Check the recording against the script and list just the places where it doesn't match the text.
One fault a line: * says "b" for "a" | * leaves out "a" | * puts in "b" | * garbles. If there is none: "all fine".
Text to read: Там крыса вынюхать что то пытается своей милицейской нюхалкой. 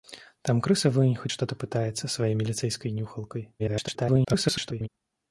* garbles